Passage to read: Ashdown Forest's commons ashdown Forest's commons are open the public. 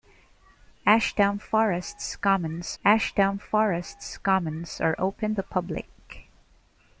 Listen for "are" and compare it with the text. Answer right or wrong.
right